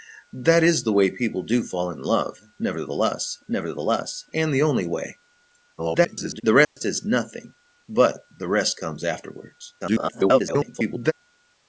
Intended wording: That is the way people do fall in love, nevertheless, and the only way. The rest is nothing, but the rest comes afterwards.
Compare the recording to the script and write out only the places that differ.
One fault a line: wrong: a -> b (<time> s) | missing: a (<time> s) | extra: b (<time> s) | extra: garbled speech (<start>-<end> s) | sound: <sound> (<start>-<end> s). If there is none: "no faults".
extra: nevertheless (3.5 s)
extra: garbled speech (5.8-6.4 s)
sound: dropout (6.6-6.8 s)
extra: garbled speech (9.8-11.1 s)